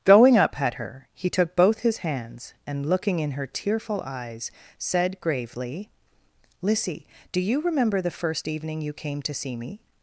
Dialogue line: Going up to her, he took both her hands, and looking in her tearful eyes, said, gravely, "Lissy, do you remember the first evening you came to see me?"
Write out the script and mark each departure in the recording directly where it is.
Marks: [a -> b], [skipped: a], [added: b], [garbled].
Going up [to -> at] her, he took both [her -> his] hands, and looking in her tearful eyes, said, gravely, "Lissy, do you remember the first evening you came to see me?"